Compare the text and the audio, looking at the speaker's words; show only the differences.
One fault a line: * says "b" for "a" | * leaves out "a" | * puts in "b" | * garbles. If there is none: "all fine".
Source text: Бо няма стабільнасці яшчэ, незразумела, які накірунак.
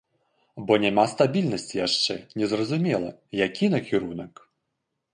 all fine